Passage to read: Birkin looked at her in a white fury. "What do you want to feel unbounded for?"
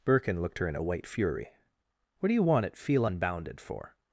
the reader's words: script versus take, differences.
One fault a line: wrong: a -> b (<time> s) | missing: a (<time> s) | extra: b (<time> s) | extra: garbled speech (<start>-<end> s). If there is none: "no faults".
missing: at (0.6 s)
wrong: to -> at (2.6 s)